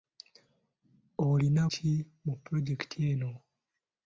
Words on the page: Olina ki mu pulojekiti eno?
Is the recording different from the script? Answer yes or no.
no